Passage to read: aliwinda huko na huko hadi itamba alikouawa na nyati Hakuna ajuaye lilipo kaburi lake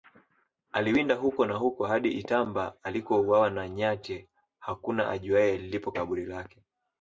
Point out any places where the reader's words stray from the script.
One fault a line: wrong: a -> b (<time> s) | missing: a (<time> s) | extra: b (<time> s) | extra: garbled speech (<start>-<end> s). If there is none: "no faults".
no faults